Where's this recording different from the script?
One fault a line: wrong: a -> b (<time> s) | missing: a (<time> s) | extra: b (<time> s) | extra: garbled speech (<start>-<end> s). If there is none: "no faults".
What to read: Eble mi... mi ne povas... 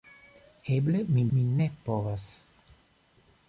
no faults